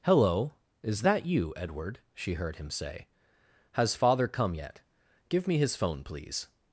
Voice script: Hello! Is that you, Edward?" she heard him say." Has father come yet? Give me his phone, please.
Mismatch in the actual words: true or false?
false